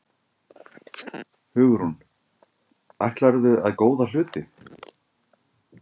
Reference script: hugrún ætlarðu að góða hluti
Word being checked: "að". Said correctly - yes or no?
yes